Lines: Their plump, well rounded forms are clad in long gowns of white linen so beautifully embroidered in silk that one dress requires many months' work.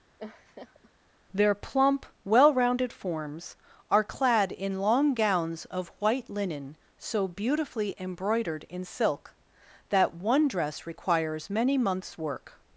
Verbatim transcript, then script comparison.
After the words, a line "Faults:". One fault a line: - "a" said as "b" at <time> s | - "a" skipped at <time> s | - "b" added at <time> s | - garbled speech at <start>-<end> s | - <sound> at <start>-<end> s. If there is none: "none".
Their plump, well rounded forms are clad in long gowns of white linen so beautifully embroidered in silk that one dress requires many months' work.
Faults:
- laugh at 0.2-0.9 s